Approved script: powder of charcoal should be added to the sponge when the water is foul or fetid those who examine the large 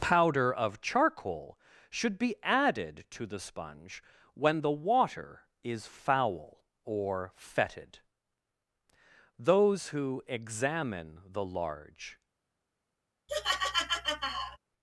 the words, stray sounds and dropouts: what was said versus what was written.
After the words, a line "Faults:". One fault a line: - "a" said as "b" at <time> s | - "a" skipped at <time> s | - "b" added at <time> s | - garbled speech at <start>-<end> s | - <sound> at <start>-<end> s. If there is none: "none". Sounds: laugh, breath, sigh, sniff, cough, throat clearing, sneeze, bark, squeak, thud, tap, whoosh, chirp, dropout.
powder of charcoal should be added to the sponge when the water is foul or fetid those who examine the large
Faults:
- laugh at 13.3-14.6 s